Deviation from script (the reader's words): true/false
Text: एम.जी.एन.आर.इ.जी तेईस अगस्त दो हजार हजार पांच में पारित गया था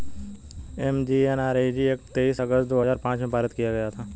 true